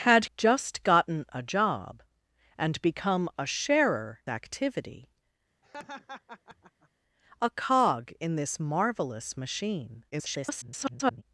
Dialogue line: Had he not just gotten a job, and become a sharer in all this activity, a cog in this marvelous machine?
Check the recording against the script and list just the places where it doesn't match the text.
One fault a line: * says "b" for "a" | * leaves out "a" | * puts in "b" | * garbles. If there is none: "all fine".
* leaves out "he not"
* leaves out "in all this"
* garbles